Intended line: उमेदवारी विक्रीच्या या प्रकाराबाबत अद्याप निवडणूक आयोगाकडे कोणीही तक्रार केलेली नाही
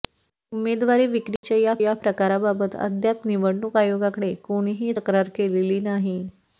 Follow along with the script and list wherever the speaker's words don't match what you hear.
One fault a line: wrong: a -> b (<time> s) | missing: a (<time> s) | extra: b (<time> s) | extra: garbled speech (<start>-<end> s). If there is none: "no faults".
extra: या (1.8 s)